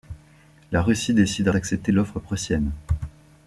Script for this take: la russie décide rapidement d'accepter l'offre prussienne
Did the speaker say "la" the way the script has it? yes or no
yes